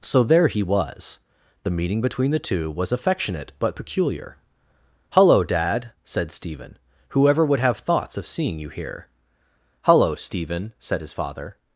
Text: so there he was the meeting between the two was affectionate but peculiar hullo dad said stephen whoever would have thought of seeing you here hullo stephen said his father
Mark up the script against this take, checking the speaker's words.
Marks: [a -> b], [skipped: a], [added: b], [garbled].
so there he was the meeting between the two was affectionate but peculiar hullo dad said stephen whoever would have [thought -> thoughts] of seeing you here hullo stephen said his father